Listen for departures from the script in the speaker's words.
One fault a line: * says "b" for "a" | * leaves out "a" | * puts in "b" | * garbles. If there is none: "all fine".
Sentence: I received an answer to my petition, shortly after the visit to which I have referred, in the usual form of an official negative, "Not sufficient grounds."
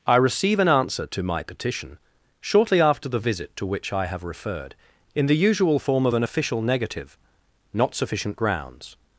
* says "receive" for "received"